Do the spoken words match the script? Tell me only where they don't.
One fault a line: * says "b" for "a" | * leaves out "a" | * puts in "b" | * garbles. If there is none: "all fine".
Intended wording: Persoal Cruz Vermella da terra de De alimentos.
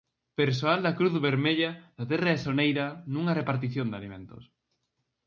* puts in "da"
* puts in "Soneira nunha repartición"